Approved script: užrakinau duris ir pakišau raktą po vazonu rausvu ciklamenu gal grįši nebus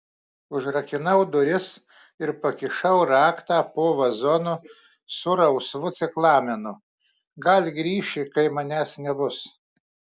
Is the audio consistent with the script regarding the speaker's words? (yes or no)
no